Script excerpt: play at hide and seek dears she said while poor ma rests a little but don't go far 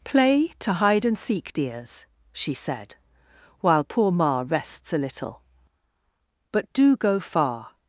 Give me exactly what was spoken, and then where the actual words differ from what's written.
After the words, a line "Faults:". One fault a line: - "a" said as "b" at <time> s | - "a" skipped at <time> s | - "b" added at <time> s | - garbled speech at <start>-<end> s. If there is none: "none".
play to hide and seek dears she said while poor ma rests a little but do go far
Faults:
- "at" said as "to" at 0.6 s
- "don't" said as "do" at 6.7 s